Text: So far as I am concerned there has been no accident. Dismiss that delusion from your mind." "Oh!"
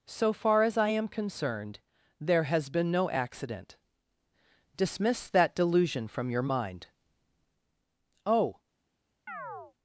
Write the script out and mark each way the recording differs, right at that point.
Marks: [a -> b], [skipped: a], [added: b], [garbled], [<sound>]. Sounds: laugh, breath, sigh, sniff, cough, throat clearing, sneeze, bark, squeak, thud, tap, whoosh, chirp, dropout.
So far as I am concerned there has been no accident. Dismiss that delusion from your mind." "Oh!" [chirp]